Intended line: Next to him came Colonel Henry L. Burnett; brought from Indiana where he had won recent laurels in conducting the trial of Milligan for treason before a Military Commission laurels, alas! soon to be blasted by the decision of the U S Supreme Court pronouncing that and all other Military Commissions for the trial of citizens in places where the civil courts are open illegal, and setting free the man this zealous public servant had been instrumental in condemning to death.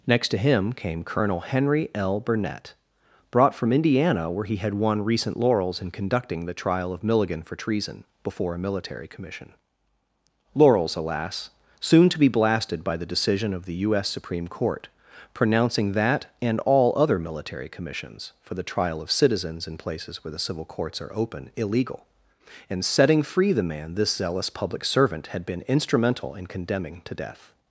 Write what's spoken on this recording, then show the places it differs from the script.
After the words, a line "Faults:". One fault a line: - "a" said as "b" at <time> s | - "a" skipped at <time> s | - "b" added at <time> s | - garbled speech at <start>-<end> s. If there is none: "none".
Next to him came Colonel Henry L. Burnett; brought from Indiana where he had won recent laurels in conducting the trial of Milligan for treason before a Military Commission laurels, alas! soon to be blasted by the decision of the U S Supreme Court pronouncing that and all other Military Commissions for the trial of citizens in places where the civil courts are open illegal, and setting free the man this zealous public servant had been instrumental in condemning to death.
Faults:
none